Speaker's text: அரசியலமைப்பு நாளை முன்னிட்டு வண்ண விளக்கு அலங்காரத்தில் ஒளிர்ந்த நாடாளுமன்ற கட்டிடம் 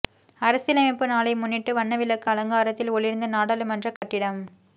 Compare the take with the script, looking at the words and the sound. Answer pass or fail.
fail